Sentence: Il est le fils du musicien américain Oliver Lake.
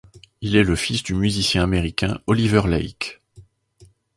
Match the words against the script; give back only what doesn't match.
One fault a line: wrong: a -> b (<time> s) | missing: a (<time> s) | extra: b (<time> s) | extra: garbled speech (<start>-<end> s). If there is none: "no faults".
no faults